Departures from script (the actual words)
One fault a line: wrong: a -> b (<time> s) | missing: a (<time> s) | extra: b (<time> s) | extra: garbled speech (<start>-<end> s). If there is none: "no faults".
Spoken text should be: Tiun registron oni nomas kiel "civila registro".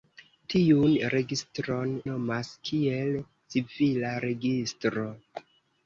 missing: oni (1.9 s)